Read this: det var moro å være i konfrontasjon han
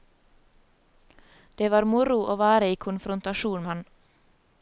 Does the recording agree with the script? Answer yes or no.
yes